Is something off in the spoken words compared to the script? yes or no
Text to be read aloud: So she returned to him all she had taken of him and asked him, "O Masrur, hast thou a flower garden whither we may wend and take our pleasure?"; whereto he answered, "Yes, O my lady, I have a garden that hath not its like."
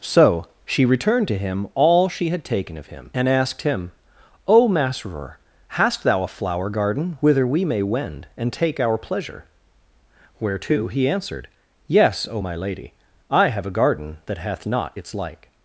no